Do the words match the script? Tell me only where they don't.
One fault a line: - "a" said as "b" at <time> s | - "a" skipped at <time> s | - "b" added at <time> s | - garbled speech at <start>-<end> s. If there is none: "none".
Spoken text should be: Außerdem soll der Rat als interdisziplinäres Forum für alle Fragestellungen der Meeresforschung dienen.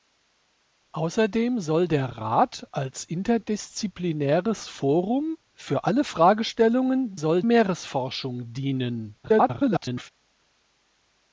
- "der" said as "soll" at 7.1 s
- garbled speech at 9.2-10.1 s